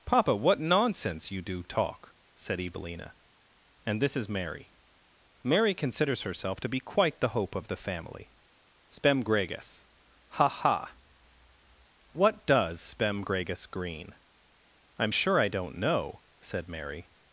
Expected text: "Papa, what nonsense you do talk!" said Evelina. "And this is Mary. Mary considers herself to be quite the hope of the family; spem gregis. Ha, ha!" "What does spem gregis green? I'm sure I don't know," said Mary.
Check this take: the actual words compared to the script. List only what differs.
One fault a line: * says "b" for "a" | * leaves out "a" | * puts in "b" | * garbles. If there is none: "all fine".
all fine